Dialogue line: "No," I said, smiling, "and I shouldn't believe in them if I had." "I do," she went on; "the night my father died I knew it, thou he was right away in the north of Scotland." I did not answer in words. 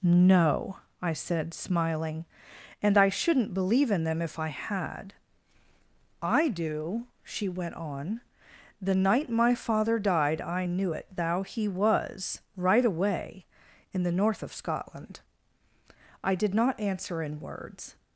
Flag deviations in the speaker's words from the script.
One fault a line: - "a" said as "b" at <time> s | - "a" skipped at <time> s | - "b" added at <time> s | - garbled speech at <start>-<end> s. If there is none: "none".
none